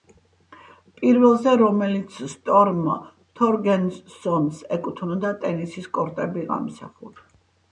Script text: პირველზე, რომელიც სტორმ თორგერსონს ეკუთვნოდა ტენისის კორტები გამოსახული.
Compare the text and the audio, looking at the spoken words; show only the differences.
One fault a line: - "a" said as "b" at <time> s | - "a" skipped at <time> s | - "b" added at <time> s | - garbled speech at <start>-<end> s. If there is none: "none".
none